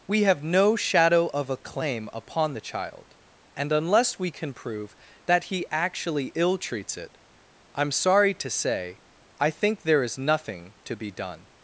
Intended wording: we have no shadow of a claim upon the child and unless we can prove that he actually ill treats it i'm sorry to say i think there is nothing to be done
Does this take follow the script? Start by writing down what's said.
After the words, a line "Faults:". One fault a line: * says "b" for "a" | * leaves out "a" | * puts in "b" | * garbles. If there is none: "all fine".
we have no shadow of a claim upon the child and unless we can prove that he actually ill treats it i'm sorry to say i think there is nothing to be done
Faults:
all fine